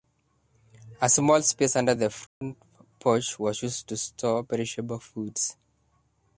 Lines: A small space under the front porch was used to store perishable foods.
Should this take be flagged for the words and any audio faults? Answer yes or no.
yes